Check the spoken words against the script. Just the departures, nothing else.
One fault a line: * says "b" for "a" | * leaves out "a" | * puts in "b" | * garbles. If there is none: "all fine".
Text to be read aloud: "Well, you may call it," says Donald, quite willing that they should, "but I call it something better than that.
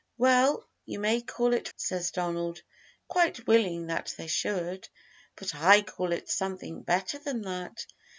all fine